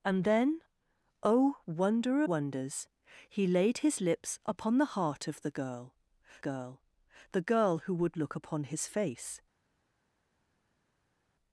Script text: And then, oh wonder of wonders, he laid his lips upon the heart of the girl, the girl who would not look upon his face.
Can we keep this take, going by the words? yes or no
no